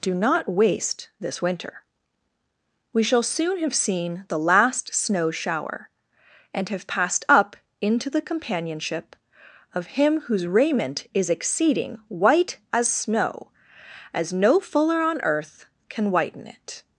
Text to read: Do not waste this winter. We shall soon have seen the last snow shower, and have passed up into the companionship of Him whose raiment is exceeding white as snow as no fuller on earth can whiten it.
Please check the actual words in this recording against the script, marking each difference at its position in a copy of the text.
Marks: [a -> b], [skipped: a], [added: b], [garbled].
Do not waste this winter. We shall soon have seen the last snow shower, and have passed up into the companionship of Him whose raiment is exceeding white as snow as no fuller on earth can whiten it.